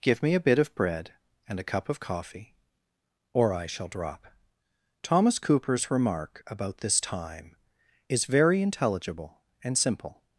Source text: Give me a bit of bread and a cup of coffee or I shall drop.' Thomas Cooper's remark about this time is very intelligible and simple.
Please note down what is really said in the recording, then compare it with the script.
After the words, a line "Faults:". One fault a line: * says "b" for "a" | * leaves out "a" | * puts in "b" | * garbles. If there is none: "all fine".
Give me a bit of bread and a cup of coffee or I shall drop.' Thomas Cooper's remark about this time is very intelligible and simple.
Faults:
all fine